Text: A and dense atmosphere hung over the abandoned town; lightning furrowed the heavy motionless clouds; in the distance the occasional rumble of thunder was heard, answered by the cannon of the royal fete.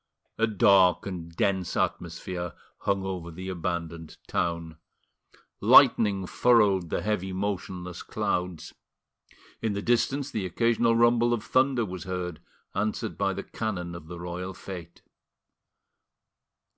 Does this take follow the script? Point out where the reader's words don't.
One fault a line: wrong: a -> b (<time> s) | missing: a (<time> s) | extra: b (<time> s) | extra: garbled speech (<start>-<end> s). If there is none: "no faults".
extra: dark (0.5 s)